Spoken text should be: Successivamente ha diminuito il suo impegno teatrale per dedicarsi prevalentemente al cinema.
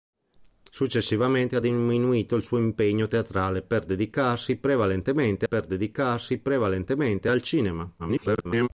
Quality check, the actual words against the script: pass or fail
fail